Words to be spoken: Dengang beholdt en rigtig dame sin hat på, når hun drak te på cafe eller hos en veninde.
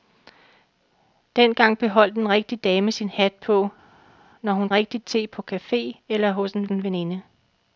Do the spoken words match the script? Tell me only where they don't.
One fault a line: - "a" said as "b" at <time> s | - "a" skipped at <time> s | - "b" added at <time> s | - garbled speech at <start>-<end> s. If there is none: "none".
- "drak" said as "rigtig" at 4.7 s
- "en" added at 6.7 s